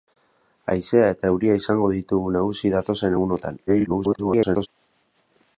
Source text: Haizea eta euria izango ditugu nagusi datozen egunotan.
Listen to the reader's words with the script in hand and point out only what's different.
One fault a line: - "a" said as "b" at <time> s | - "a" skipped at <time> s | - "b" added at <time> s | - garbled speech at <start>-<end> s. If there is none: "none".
- garbled speech at 3.7-4.7 s